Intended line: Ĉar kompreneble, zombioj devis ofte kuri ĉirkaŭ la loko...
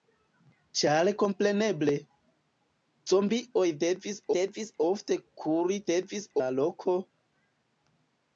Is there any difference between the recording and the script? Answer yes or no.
yes